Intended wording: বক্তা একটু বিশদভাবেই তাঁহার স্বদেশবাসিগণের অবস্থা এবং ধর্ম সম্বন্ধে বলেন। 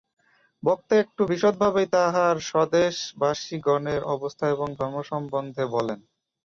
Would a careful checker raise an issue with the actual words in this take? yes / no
no